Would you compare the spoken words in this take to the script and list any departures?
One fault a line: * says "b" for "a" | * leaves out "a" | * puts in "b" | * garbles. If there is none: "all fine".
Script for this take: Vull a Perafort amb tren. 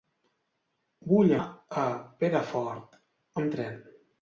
all fine